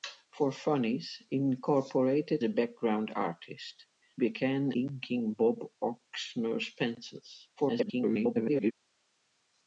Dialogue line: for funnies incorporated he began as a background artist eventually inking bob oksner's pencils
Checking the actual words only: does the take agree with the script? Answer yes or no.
no